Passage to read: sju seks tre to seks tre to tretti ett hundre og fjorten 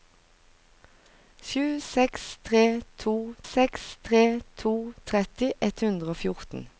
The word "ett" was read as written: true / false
true